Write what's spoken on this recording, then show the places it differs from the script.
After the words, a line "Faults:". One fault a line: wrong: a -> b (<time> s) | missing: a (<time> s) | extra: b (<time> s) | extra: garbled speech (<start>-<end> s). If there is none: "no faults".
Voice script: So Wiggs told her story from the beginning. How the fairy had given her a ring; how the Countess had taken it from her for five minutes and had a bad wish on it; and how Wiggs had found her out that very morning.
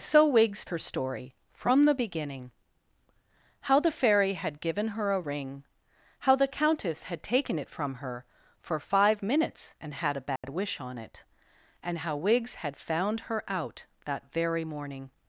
So Wiggs her story from the beginning. How the fairy had given her a ring; how the Countess had taken it from her for five minutes and had a bad wish on it; and how Wiggs had found her out that very morning.
Faults:
missing: told (0.7 s)